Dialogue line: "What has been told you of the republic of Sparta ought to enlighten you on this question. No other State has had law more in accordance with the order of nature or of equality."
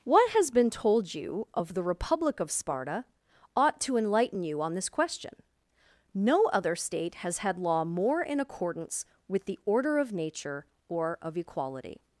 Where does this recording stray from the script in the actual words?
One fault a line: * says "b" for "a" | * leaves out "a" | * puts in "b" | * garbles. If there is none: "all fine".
all fine